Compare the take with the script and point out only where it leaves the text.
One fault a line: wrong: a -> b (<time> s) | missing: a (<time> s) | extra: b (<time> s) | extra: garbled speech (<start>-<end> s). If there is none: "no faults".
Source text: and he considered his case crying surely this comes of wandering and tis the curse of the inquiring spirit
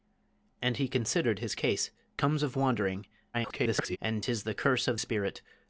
missing: crying surely this (1.9 s)
extra: garbled speech (3.3-4.0 s)
missing: the inquiring (5.0 s)